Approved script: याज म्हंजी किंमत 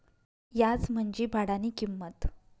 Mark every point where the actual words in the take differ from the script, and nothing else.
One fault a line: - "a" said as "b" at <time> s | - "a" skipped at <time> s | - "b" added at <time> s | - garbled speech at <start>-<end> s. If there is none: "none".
- "भाडानी" added at 1.3 s